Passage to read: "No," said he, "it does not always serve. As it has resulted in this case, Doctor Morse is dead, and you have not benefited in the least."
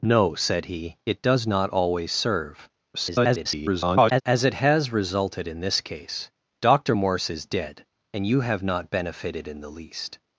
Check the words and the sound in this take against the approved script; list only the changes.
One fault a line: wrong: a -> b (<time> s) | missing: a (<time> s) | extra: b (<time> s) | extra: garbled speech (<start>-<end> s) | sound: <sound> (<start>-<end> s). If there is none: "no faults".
extra: garbled speech (2.9-4.2 s)